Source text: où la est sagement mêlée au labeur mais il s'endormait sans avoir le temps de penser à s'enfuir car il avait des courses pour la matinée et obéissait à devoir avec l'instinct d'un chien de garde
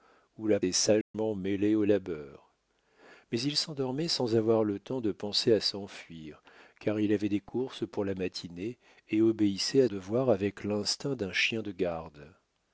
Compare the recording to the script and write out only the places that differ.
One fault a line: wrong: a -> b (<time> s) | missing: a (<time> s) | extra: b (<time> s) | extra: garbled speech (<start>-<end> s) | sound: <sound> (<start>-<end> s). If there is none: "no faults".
sound: dropout (1.0-1.1 s)